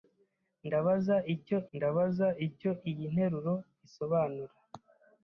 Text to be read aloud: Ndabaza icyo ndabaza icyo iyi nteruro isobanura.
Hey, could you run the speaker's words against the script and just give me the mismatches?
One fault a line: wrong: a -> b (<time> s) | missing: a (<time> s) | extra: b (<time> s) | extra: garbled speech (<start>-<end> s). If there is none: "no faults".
no faults